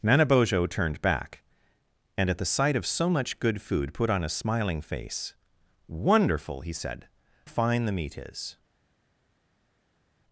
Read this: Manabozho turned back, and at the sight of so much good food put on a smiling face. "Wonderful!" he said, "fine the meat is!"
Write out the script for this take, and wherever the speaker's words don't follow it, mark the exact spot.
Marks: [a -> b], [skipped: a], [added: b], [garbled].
Manabozho turned back, and at the sight of so much good food put on a smiling face. "Wonderful!" he said, "fine the meat is!"